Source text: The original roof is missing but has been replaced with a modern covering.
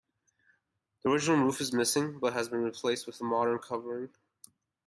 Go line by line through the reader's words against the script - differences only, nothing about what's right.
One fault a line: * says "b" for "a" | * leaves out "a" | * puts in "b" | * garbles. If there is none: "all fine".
all fine